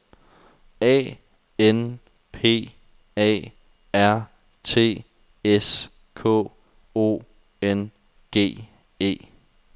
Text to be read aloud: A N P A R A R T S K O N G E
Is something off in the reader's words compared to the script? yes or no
yes